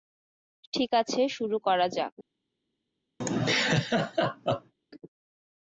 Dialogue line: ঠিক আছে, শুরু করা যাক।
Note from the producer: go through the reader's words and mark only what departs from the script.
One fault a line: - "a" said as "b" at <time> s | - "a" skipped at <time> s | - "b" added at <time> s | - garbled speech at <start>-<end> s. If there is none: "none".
none